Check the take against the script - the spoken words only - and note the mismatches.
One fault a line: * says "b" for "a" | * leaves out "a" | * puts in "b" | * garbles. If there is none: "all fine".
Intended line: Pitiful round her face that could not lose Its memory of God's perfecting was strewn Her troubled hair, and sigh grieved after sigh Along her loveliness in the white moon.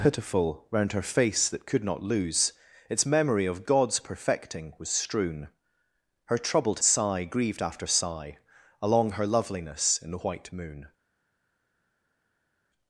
* leaves out "hair and"